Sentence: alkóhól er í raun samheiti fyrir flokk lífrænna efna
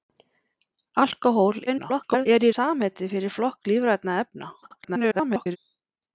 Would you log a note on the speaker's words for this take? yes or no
yes